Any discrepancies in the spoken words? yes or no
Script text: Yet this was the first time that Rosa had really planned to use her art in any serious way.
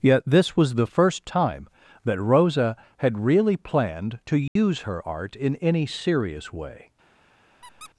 no